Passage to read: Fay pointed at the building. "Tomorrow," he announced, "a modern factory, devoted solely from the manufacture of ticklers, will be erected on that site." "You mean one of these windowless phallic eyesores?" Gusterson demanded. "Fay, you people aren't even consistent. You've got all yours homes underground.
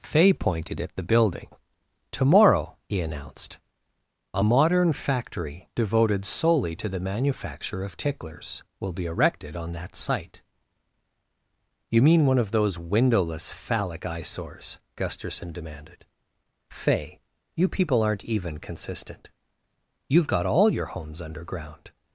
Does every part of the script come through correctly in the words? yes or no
no